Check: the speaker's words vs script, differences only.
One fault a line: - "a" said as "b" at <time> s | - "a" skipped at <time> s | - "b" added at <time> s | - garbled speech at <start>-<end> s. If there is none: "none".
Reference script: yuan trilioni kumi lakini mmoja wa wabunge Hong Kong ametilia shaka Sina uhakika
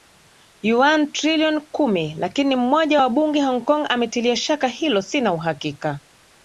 - "hilo" added at 4.7 s